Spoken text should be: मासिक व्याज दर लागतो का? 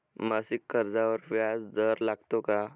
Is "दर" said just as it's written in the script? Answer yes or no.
yes